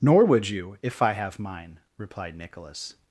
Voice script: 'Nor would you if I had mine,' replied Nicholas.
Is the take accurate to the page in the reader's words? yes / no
no